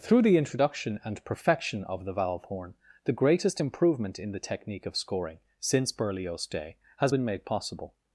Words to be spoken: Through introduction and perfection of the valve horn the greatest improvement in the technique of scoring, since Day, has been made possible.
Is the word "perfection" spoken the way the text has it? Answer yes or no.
yes